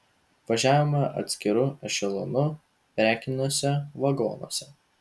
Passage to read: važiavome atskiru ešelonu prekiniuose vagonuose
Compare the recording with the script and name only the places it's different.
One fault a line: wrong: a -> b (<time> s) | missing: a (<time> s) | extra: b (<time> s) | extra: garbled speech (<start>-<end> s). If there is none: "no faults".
no faults